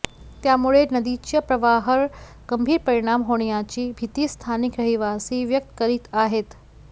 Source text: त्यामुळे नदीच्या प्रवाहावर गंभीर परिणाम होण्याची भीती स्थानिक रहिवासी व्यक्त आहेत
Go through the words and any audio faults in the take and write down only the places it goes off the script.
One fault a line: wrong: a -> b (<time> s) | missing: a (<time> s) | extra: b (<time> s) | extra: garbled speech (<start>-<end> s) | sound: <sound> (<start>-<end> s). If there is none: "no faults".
extra: करीत (5.8 s)